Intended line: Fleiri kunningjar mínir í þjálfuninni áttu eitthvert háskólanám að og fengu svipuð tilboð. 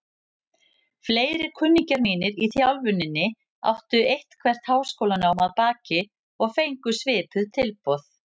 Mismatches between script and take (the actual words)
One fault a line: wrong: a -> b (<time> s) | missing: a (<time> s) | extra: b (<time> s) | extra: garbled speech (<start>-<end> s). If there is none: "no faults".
extra: baki (5.6 s)